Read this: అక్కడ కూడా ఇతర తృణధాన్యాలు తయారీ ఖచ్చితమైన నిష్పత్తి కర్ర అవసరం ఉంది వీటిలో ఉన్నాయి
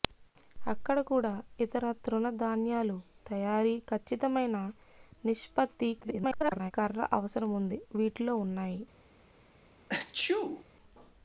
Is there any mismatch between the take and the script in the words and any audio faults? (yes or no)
yes